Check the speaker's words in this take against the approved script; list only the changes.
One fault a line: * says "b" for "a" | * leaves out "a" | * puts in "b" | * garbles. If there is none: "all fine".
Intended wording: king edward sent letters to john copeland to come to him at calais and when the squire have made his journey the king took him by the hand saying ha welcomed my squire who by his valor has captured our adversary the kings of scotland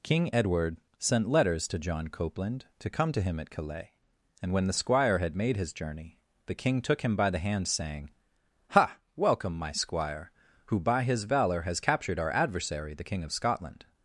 * says "had" for "have"
* says "welcome" for "welcomed"
* says "king" for "kings"